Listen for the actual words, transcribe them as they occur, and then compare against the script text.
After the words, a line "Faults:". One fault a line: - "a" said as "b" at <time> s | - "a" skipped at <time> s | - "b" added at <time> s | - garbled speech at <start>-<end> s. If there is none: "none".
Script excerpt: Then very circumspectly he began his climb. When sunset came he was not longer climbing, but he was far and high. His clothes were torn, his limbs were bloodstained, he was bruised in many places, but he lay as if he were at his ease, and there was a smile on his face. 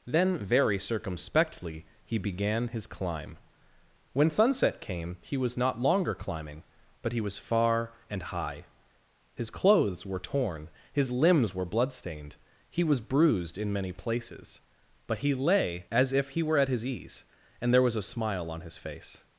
Then very circumspectly he began his climb. When sunset came he was not longer climbing, but he was far and high. His clothes were torn, his limbs were bloodstained, he was bruised in many places, but he lay as if he were at his ease, and there was a smile on his face.
Faults:
none